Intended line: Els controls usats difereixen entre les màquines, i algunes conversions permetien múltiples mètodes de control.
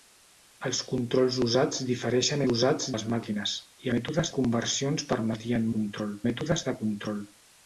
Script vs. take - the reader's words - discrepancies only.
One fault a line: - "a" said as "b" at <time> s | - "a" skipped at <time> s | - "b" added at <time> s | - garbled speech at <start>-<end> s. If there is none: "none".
- "entre" said as "usats" at 2.5 s
- "algunes" said as "mètodes" at 4.0 s
- "múltiples" said as "control" at 5.8 s